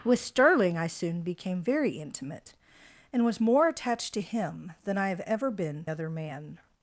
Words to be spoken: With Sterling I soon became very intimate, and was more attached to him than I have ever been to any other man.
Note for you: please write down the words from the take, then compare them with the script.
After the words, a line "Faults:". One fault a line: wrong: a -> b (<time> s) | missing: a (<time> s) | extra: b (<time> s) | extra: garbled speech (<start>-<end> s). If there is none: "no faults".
With Sterling I soon became very intimate, and was more attached to him than I have ever been other man.
Faults:
missing: to any (5.8 s)